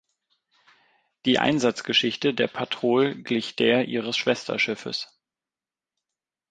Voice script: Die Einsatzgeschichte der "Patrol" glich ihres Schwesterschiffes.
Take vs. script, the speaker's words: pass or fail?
fail